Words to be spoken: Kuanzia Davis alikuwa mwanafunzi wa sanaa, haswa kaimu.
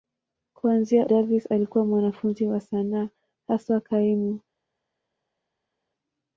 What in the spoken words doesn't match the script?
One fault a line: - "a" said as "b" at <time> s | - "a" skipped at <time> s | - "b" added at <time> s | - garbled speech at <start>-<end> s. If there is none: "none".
none